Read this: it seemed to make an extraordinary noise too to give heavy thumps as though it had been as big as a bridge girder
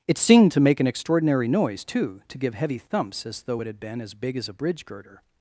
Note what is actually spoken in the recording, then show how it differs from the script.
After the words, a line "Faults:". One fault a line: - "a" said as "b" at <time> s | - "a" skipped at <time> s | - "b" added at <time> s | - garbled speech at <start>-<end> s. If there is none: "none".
it seemed to make an extraordinary noise too to give heavy thumps as though it had been as big as a bridge girder
Faults:
none